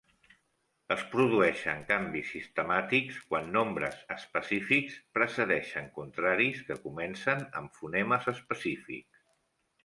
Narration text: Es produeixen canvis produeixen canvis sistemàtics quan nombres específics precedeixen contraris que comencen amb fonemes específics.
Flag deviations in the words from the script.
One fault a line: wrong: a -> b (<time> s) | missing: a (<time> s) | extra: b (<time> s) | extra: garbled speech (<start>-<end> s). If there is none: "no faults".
missing: produeixen canvis (2.3 s)